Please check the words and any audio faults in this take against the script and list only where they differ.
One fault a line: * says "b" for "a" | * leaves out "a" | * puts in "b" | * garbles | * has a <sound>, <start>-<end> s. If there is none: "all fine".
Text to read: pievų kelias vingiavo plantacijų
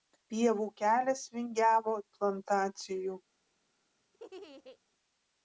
* has a laugh, 4.1-4.8 s